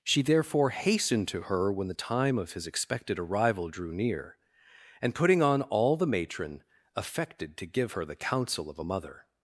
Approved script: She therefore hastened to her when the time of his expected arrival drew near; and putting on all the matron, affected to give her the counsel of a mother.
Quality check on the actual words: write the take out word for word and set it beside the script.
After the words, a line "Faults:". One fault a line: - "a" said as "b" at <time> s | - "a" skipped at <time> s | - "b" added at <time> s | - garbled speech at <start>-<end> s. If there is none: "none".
She therefore hastened to her when the time of his expected arrival drew near; and putting on all the matron, affected to give her the counsel of a mother.
Faults:
none